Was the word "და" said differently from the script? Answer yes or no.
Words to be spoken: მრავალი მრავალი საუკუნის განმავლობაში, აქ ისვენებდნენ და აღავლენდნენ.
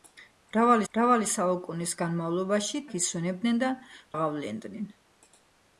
no